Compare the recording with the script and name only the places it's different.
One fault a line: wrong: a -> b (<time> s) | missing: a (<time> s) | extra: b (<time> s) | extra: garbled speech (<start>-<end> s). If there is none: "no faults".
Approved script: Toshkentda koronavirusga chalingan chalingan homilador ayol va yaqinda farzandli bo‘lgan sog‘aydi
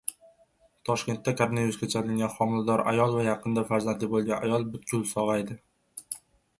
missing: chalingan (2.3 s)
extra: ayol butkul (4.5 s)